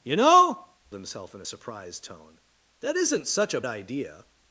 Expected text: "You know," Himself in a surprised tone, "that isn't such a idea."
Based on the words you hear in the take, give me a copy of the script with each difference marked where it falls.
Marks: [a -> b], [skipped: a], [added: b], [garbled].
"You know," Himself in a surprised tone, "that isn't such a idea."